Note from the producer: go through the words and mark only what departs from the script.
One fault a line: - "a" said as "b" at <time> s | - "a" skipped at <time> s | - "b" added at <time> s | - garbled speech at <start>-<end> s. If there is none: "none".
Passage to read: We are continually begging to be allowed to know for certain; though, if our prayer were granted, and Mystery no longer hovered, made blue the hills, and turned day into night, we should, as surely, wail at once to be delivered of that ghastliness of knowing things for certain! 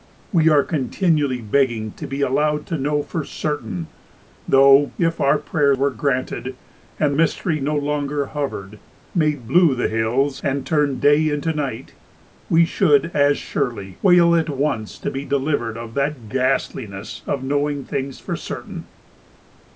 none